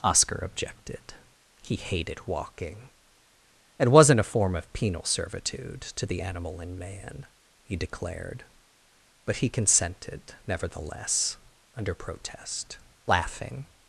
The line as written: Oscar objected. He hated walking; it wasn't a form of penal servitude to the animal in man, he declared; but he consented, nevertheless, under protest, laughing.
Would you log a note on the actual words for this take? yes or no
no